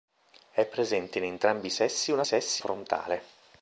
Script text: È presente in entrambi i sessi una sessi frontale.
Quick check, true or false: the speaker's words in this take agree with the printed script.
true